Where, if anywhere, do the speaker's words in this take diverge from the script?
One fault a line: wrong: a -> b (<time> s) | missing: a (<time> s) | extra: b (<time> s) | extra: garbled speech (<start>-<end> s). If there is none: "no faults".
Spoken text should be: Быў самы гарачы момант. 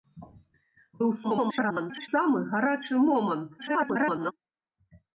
extra: garbled speech (1.2-2.1 s)
extra: garbled speech (3.6-4.3 s)